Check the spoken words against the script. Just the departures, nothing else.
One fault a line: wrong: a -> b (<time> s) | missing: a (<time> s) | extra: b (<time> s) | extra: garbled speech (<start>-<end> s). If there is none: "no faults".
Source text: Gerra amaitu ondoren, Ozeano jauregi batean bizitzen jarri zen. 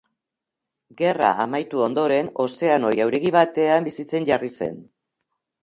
no faults